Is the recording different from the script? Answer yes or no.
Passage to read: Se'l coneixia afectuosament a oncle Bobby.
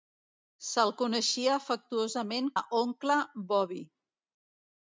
no